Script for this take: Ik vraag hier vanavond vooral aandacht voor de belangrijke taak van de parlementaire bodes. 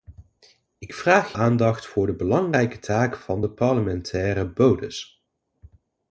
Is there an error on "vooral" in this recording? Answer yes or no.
yes